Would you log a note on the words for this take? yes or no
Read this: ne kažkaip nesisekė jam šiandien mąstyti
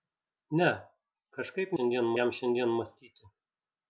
yes